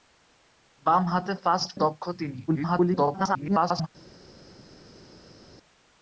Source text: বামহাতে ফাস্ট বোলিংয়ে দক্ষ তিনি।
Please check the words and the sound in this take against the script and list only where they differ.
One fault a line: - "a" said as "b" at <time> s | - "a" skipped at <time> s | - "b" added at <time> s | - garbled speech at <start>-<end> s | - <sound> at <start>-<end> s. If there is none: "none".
- "বোলিংয়ে" skipped at 1.7 s
- garbled speech at 2.5-3.9 s